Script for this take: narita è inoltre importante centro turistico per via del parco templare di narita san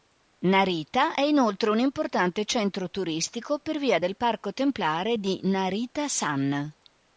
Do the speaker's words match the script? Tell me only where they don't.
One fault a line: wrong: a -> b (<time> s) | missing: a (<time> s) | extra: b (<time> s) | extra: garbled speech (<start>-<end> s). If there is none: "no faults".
extra: un (1.7 s)